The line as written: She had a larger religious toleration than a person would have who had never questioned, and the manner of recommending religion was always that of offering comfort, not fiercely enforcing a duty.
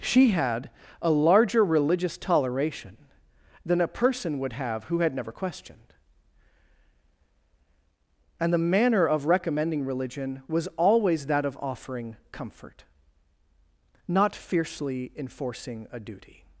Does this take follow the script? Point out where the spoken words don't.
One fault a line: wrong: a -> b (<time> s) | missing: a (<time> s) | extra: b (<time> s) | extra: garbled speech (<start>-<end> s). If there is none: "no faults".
no faults